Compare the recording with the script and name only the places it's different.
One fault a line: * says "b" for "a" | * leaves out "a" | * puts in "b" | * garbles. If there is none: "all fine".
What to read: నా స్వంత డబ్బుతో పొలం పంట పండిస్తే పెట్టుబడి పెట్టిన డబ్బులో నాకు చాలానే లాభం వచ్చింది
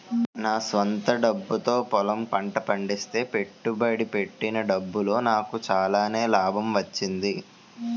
all fine